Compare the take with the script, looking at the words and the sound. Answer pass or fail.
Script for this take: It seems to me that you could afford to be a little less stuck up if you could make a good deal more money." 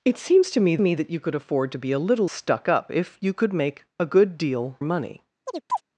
fail